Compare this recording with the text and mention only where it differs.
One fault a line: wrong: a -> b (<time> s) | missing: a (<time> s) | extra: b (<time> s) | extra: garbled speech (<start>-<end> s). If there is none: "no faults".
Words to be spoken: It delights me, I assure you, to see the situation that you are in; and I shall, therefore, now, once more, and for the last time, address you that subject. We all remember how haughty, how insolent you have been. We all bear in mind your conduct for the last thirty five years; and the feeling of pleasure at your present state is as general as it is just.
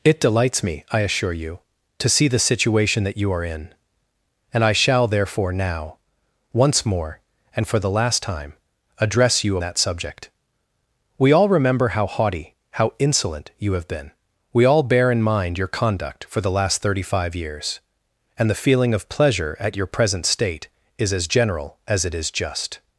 no faults